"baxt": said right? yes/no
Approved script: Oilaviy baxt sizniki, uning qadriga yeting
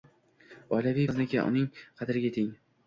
no